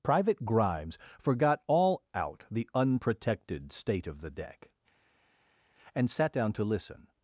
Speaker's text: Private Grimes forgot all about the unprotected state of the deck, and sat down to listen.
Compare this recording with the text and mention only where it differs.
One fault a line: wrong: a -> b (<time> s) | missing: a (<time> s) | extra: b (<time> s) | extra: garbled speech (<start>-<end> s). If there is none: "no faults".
wrong: about -> out (2.1 s)